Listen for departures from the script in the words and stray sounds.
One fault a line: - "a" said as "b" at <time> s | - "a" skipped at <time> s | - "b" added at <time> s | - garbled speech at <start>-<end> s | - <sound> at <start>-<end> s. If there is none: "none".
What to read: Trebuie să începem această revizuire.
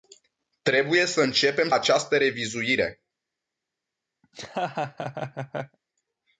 - laugh at 4.2-5.8 s